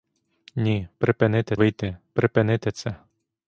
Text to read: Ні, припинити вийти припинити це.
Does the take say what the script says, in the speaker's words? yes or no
yes